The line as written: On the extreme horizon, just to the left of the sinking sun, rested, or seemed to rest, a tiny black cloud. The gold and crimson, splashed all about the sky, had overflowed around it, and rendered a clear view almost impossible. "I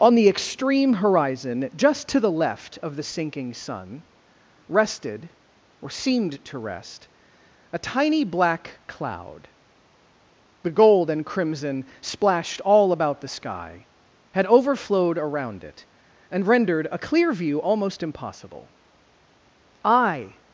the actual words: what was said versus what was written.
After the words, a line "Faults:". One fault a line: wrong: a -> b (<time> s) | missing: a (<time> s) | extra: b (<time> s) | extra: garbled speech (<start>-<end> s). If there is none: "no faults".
On the extreme horizon, just to the left of the sinking sun, rested, or seemed to rest, a tiny black cloud. The gold and crimson, splashed all about the sky, had overflowed around it, and rendered a clear view almost impossible. "I
Faults:
no faults